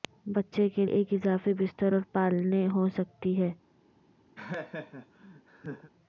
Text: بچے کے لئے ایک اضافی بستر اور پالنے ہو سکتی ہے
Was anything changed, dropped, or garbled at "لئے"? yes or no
yes